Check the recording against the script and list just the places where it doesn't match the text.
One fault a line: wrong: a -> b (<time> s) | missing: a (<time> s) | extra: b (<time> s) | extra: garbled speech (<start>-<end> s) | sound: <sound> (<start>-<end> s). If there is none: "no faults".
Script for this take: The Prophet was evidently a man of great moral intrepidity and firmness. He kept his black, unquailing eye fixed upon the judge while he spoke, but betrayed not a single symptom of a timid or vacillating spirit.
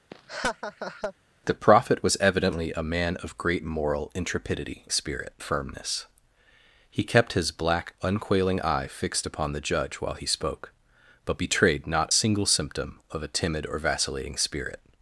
sound: laugh (0.1-1.1 s)
wrong: and -> spirit (4.9 s)
missing: a (12.1 s)